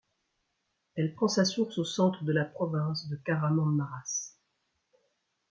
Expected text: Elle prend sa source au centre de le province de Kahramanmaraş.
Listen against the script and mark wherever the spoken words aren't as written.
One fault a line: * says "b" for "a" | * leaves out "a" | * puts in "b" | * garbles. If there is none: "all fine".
* says "la" for "le"